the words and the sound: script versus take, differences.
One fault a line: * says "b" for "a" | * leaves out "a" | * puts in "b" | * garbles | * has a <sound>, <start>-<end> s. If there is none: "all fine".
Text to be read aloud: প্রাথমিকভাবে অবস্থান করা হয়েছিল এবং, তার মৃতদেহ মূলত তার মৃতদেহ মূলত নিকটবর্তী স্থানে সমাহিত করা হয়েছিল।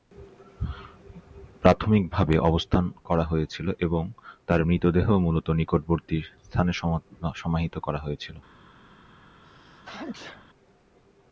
* leaves out "তার মৃতদেহ মূলত"
* has a sneeze, 9.4-10.5 s